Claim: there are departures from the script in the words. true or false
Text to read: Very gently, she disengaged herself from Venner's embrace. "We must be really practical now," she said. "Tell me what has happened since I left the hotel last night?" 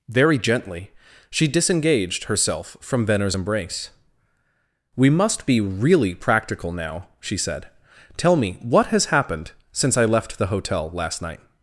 false